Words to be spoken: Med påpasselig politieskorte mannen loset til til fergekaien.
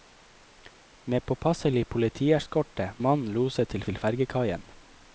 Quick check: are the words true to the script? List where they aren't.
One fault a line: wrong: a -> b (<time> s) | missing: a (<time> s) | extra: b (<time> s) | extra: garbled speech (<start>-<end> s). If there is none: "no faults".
no faults